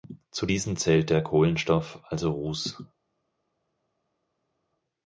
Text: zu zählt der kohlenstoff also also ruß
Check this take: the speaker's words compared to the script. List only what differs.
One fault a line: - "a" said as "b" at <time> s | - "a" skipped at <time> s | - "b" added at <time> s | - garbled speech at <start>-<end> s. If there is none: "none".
- "diesen" added at 0.4 s
- "also" skipped at 2.3 s